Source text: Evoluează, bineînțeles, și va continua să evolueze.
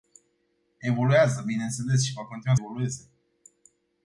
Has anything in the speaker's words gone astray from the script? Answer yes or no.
yes